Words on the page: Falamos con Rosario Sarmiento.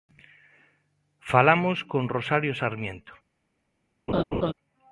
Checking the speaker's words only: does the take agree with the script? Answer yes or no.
yes